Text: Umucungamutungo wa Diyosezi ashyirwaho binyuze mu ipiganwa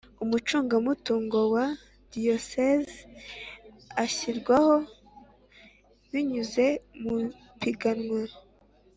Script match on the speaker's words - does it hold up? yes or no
yes